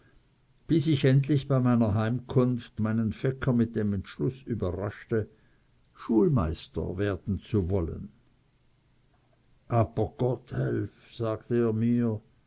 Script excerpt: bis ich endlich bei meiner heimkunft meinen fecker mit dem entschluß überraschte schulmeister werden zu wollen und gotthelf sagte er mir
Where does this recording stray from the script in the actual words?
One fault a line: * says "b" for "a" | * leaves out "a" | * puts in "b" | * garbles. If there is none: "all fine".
* says "aber" for "und"